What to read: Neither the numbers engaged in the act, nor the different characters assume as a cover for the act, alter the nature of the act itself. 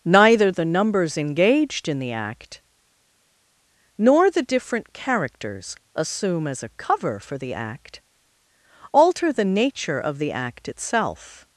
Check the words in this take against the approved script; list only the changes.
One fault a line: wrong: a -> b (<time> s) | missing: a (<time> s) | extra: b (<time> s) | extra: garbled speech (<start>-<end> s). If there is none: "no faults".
no faults